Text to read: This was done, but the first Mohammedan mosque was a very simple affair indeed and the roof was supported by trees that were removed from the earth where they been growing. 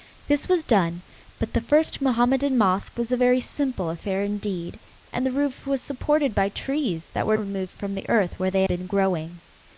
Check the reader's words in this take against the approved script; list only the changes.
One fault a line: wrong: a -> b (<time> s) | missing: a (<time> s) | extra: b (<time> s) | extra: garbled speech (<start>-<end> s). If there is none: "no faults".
no faults